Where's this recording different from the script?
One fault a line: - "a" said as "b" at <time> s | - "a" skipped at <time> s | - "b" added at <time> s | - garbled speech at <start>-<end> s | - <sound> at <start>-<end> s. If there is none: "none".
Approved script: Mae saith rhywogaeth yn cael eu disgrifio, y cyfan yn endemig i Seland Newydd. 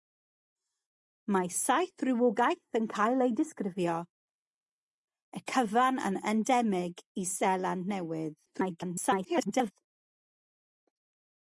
- garbled speech at 8.5-9.7 s